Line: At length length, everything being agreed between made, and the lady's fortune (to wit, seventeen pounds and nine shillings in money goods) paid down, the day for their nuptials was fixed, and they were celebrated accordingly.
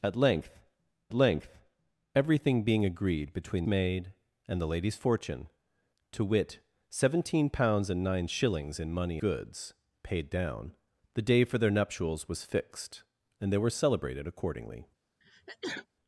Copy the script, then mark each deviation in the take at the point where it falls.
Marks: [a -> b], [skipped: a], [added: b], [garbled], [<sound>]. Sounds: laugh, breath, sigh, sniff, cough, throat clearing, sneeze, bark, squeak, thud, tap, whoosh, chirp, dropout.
At length length, everything being agreed between made, and the lady's fortune (to wit, seventeen pounds and nine shillings in money goods) paid down, the day for their nuptials was fixed, and they were celebrated accordingly. [sneeze]